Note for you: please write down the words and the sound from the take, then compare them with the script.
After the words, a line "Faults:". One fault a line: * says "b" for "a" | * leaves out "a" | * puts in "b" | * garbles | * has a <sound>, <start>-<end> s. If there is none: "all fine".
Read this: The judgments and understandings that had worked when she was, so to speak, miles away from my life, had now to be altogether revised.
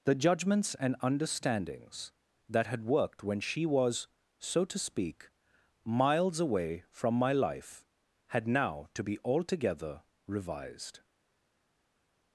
The judgments and understandings that had worked when she was, so to speak, miles away from my life, had now to be altogether revised.
Faults:
all fine